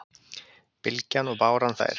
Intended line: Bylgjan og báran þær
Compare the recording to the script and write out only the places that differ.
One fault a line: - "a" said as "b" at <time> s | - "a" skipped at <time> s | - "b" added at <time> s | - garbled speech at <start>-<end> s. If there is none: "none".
none